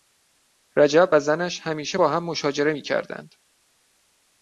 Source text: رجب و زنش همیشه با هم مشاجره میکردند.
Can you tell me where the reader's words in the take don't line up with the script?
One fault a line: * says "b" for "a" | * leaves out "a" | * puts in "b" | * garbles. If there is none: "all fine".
all fine